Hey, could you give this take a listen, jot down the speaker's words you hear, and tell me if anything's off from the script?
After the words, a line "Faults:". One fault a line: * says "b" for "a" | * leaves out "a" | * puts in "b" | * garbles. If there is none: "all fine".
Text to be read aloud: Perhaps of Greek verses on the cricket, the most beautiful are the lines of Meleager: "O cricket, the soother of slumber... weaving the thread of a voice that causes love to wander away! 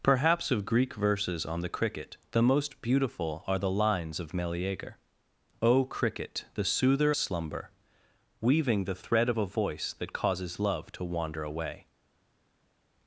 Perhaps of Greek verses on the cricket, the most beautiful are the lines of Meleager: "O cricket, the soother slumber... weaving the thread of a voice that causes love to wander away!
Faults:
* leaves out "of"